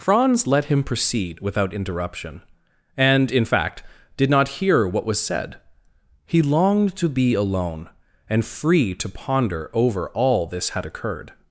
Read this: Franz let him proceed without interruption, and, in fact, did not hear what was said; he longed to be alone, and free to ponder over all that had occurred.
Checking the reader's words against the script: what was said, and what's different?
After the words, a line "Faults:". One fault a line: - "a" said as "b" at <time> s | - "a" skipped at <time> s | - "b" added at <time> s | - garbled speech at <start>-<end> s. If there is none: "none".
Franz let him proceed without interruption, and, in fact, did not hear what was said; he longed to be alone, and free to ponder over all this had occurred.
Faults:
- "that" said as "this" at 10.4 s